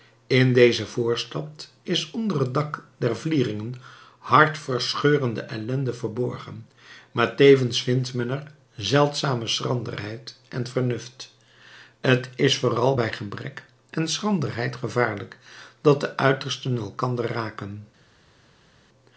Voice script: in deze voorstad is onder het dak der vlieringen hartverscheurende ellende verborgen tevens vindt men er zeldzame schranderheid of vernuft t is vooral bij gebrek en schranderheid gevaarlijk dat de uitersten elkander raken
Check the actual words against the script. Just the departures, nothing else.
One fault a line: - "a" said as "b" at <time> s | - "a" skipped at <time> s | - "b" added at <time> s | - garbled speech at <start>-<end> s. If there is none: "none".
- "maar" added at 7.1 s
- "of" said as "en" at 10.5 s